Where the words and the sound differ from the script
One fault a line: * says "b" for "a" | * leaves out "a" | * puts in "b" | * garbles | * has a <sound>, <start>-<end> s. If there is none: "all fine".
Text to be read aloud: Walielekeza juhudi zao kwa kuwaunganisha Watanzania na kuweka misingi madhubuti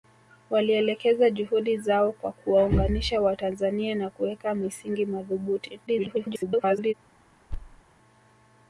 * garbles
* has a thud, 7.5-7.8 s